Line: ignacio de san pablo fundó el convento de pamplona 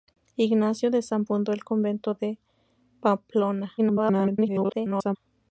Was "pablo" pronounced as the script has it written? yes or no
no